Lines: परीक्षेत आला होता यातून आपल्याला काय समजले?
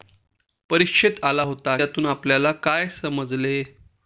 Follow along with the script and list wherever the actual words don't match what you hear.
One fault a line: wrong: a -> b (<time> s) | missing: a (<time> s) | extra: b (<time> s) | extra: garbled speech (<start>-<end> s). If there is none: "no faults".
no faults